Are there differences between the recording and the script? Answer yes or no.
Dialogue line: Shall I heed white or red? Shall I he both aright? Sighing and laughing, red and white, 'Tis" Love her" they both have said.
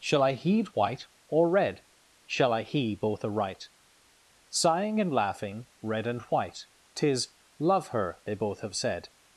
no